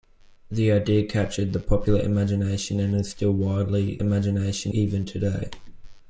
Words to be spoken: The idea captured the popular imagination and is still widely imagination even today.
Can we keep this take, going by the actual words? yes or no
yes